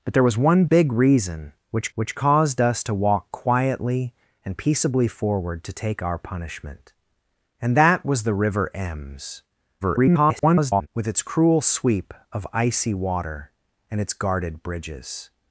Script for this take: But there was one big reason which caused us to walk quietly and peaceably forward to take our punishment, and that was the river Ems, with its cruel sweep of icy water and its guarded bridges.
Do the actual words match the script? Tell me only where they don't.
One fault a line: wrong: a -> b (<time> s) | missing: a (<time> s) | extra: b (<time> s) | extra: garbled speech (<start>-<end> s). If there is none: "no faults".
extra: which (1.9 s)
extra: garbled speech (9.8-10.9 s)